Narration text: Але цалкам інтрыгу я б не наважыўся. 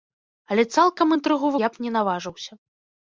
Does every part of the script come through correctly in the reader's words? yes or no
yes